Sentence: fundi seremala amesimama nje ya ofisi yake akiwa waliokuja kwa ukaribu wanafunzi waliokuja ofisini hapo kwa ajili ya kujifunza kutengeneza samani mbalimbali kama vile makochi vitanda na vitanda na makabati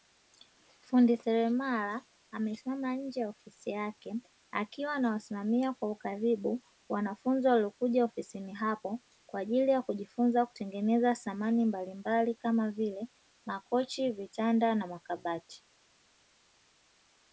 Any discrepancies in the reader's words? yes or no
yes